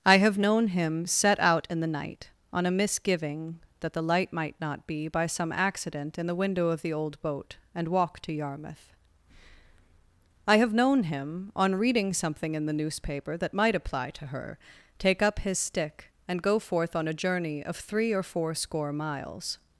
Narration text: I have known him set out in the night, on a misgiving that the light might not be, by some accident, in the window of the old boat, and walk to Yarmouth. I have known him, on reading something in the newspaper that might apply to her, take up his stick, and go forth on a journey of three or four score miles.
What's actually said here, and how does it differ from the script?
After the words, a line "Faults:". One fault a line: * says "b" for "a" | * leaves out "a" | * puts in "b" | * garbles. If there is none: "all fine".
I have known him set out in the night, on a misgiving that the light might not be, by some accident, in the window of the old boat, and walk to Yarmouth. I have known him, on reading something in the newspaper that might apply to her, take up his stick, and go forth on a journey of three or four score miles.
Faults:
all fine